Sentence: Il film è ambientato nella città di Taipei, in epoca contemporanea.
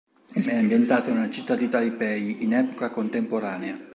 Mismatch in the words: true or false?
true